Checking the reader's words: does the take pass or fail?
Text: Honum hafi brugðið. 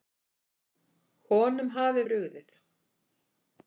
pass